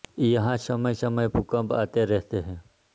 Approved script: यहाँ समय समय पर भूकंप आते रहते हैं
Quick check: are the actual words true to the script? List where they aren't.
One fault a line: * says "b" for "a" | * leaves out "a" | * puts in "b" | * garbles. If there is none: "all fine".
* leaves out "पर"